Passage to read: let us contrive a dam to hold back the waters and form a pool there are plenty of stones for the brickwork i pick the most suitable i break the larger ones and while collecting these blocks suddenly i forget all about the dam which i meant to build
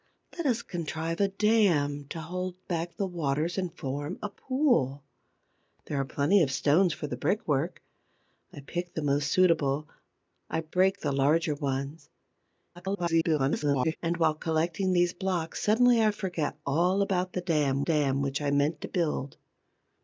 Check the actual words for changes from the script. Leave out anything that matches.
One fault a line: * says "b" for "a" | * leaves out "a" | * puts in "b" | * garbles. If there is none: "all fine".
* garbles
* puts in "dam"